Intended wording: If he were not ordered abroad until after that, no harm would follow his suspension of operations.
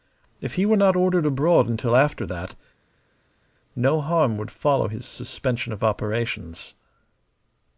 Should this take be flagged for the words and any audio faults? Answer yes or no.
no